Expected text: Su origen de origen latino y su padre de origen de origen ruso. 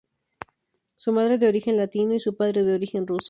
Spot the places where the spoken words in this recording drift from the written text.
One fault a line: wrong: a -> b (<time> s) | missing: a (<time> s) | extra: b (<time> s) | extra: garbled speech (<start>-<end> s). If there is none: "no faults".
wrong: origen -> madre (1.1 s)
missing: de origen (3.1 s)